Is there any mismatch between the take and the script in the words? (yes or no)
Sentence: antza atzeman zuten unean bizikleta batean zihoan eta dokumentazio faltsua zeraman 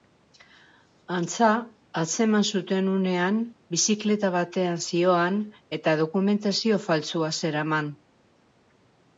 no